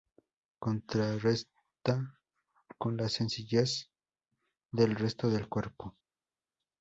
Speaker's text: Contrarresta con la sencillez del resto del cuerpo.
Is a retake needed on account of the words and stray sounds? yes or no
no